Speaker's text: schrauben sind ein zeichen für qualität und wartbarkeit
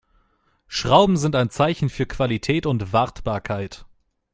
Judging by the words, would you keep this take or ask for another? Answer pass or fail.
pass